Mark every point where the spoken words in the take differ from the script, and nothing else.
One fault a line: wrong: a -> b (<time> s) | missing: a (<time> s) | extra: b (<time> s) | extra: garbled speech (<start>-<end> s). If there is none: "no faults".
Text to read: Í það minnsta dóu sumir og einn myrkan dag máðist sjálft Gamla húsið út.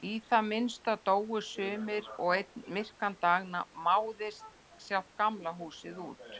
no faults